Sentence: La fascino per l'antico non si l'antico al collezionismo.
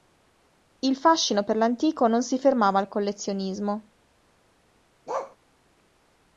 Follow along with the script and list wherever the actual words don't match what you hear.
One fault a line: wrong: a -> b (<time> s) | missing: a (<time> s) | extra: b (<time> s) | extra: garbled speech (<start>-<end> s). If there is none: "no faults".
wrong: La -> Il (0.8 s)
wrong: l'antico -> fermava (2.4 s)